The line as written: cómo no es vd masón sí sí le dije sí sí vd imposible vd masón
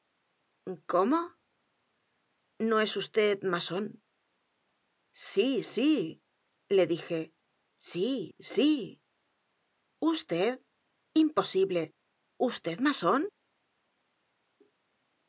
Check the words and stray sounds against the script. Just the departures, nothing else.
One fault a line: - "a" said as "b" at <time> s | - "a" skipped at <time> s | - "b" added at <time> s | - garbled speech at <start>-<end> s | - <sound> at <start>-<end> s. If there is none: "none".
none